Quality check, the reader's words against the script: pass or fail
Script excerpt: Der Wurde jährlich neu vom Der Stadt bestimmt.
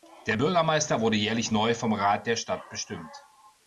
fail